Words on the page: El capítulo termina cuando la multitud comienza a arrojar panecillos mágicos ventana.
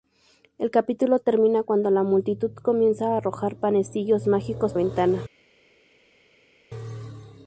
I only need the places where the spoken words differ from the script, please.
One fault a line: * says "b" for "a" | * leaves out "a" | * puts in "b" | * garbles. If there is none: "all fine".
all fine